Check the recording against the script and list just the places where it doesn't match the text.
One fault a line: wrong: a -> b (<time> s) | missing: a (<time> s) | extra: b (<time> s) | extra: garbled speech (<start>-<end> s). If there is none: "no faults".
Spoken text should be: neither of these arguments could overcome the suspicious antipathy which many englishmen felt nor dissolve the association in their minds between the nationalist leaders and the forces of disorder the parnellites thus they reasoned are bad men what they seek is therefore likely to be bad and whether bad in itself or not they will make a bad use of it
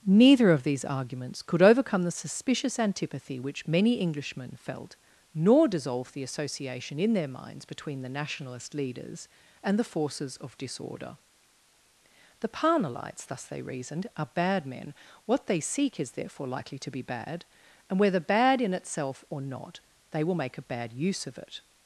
no faults